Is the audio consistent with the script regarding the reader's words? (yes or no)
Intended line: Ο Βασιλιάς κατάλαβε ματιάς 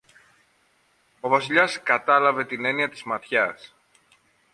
no